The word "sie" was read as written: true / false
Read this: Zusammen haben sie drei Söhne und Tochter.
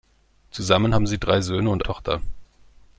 true